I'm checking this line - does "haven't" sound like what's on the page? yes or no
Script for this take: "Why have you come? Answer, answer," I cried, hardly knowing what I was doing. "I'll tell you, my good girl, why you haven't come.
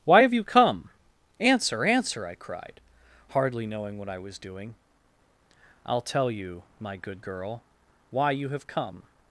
no